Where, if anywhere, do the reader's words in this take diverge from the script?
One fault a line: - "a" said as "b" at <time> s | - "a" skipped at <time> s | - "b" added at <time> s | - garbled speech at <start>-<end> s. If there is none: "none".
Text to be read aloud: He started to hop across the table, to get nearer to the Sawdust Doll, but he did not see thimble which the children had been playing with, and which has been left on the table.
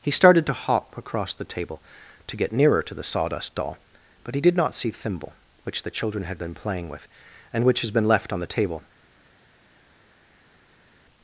none